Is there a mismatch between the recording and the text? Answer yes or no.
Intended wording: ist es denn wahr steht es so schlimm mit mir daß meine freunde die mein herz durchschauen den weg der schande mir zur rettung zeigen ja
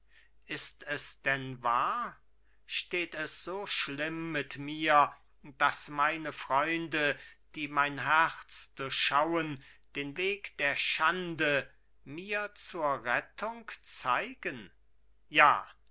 no